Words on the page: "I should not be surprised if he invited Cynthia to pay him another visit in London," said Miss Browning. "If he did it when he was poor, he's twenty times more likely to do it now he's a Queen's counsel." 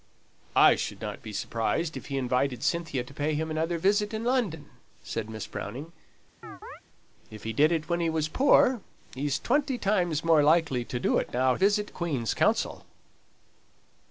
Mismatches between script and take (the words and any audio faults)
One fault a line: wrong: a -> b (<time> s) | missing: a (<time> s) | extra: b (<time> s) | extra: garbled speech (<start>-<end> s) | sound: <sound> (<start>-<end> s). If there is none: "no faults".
sound: chirp (6.4-6.8 s)
wrong: he's -> visit (11.5 s)